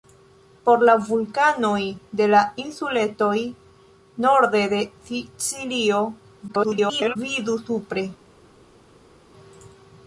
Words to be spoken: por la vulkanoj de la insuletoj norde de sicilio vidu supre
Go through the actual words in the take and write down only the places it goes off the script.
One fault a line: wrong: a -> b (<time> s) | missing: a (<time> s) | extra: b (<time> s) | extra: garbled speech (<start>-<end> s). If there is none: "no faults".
extra: garbled speech (6.5-7.2 s)